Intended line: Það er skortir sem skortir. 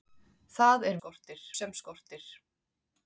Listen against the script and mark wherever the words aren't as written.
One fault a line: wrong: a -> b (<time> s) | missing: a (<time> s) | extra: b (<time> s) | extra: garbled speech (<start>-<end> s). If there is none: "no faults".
no faults